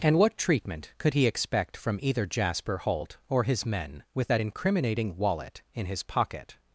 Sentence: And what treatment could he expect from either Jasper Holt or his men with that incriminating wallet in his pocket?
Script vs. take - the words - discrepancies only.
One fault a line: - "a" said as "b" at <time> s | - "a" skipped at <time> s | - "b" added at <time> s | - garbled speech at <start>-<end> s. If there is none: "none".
none